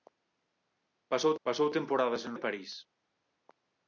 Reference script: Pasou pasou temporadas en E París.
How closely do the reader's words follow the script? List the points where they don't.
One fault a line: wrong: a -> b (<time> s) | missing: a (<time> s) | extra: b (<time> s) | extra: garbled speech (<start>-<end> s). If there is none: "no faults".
no faults